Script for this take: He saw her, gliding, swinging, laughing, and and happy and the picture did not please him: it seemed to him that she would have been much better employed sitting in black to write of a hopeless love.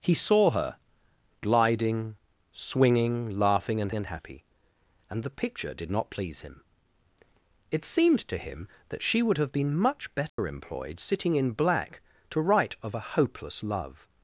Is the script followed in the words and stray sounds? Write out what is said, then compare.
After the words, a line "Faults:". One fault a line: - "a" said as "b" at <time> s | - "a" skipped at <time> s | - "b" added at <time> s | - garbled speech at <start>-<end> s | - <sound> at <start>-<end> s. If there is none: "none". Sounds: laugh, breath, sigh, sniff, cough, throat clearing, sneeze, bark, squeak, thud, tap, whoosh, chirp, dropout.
He saw her, gliding, swinging, laughing, and and happy and the picture did not please him: it seemed to him that she would have been much better employed sitting in black to write of a hopeless love.
Faults:
- dropout at 10.3-10.4 s